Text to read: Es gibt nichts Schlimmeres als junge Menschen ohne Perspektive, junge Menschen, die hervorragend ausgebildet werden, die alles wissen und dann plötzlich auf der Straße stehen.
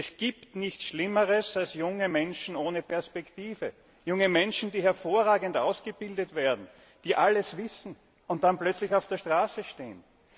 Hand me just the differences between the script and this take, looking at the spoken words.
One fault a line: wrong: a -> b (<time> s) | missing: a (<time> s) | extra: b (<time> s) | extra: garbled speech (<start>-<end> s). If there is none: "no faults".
no faults